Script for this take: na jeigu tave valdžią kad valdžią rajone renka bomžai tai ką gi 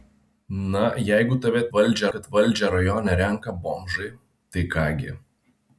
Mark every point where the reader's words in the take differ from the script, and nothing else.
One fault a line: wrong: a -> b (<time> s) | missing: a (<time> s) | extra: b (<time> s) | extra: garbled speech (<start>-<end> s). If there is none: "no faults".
no faults